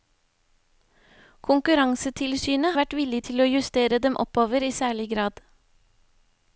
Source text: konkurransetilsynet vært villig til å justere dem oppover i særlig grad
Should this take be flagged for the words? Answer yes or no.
no